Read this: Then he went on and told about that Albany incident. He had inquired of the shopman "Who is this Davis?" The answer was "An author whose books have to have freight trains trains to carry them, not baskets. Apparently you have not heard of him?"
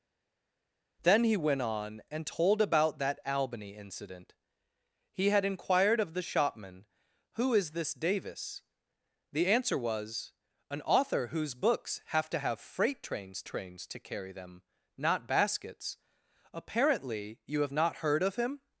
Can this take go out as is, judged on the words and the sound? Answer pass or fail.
pass